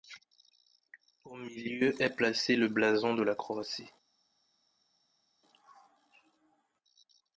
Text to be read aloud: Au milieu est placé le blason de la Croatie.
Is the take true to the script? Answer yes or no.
yes